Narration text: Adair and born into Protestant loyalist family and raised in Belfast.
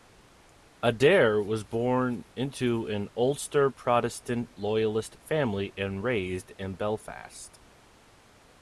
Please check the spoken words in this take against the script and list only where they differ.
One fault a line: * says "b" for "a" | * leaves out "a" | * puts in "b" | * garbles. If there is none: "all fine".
* says "was" for "and"
* puts in "an Ulster"